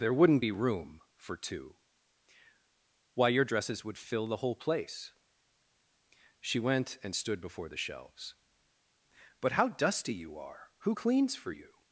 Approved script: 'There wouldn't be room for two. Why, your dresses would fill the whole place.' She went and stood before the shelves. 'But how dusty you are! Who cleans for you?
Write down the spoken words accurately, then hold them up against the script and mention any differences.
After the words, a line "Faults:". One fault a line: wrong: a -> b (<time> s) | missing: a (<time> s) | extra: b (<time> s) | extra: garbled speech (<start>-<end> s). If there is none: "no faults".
'There wouldn't be room for two. Why, your dresses would fill the whole place.' She went and stood before the shelves. 'But how dusty you are! Who cleans for you?
Faults:
no faults